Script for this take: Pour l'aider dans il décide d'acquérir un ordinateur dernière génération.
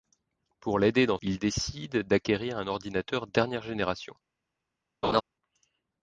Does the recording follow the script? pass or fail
pass